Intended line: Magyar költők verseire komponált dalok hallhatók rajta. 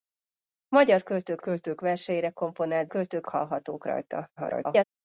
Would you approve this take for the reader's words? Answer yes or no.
no